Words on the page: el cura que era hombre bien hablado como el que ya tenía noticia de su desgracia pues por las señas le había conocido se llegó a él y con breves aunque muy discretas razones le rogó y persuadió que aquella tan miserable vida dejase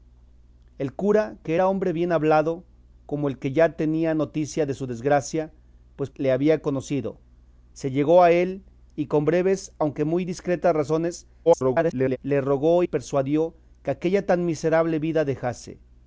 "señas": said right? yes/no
no